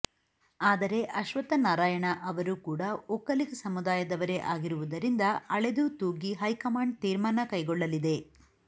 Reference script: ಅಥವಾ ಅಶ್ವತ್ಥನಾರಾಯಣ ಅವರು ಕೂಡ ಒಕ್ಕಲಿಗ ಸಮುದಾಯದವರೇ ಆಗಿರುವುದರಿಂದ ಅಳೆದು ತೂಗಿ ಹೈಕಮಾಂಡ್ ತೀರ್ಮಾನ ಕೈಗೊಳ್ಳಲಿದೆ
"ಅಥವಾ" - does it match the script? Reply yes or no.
no